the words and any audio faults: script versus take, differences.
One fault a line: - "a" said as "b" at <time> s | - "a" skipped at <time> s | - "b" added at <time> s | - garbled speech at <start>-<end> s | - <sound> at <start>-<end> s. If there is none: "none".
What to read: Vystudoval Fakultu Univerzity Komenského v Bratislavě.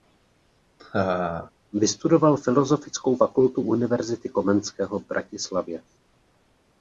- laugh at 0.8-1.5 s
- "Filozofickou" added at 2.4 s